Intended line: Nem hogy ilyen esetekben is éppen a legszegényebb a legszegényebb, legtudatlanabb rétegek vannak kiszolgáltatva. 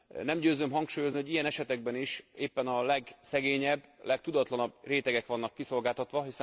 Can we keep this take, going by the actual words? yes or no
no